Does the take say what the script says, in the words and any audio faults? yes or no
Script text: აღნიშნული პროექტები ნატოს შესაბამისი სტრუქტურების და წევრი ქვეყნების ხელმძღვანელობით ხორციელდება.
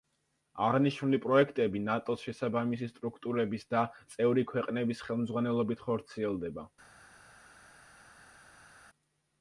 yes